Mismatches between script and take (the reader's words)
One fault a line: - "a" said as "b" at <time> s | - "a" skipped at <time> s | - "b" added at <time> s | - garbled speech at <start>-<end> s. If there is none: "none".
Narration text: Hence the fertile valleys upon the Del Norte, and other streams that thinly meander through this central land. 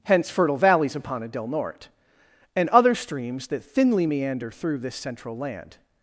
- "the" skipped at 0.3 s
- "the" said as "a" at 1.2 s